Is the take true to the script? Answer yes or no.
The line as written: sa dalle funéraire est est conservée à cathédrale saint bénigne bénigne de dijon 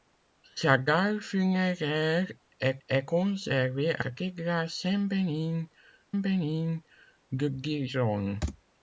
yes